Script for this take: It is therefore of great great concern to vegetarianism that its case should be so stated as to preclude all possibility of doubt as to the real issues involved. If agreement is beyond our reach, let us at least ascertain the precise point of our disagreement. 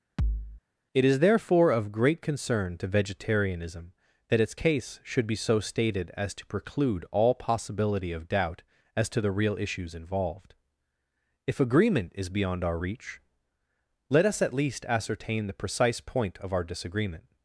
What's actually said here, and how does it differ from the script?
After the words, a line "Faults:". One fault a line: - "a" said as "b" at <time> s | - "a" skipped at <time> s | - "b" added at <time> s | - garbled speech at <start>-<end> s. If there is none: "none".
It is therefore of great concern to vegetarianism that its case should be so stated as to preclude all possibility of doubt as to the real issues involved. If agreement is beyond our reach, let us at least ascertain the precise point of our disagreement.
Faults:
- "great" skipped at 2.2 s